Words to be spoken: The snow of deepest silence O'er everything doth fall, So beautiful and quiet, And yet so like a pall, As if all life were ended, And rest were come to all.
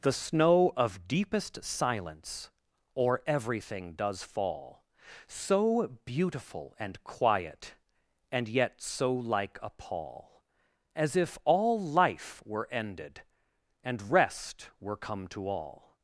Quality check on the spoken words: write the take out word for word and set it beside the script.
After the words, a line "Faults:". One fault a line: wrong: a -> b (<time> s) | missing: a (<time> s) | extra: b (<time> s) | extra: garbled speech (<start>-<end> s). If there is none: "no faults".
The snow of deepest silence O'er everything does fall, So beautiful and quiet, And yet so like a pall, As if all life were ended, And rest were come to all.
Faults:
wrong: doth -> does (3.9 s)